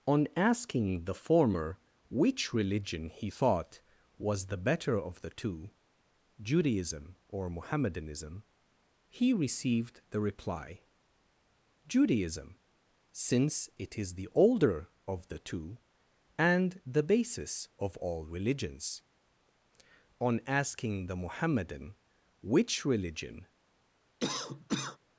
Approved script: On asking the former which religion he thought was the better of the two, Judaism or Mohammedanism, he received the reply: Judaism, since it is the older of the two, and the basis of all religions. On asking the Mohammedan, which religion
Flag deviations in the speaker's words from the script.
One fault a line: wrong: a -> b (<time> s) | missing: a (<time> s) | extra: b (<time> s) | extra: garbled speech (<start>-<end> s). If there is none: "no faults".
no faults